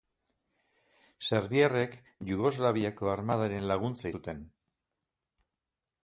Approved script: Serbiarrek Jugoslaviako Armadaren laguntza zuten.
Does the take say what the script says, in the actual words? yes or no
yes